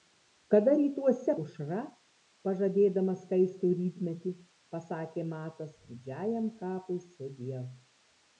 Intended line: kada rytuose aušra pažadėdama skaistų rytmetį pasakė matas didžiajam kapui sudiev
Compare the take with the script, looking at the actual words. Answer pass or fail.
pass